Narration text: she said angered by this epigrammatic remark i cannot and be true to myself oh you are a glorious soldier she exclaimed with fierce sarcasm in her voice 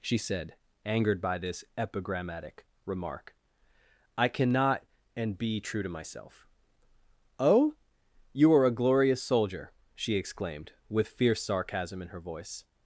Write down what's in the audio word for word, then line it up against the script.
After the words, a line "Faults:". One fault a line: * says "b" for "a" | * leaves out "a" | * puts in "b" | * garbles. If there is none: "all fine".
she said angered by this epigrammatic remark i cannot and be true to myself oh you are a glorious soldier she exclaimed with fierce sarcasm in her voice
Faults:
all fine